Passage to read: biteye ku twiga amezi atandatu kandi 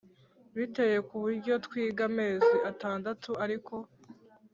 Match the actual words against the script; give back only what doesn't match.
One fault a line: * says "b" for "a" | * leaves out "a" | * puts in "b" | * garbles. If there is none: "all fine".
* puts in "buryo"
* says "ariko" for "kandi"